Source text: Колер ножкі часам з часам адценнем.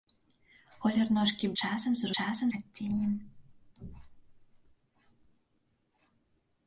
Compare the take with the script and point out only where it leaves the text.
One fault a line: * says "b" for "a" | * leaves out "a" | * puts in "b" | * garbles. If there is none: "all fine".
all fine